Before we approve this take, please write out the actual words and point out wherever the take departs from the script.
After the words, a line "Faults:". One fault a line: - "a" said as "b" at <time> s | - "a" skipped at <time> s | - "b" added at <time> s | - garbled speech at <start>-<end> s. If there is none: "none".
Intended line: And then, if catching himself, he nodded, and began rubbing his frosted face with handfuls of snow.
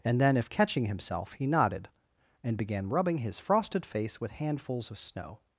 And then, if catching himself, he nodded, and began rubbing his frosted face with handfuls of snow.
Faults:
none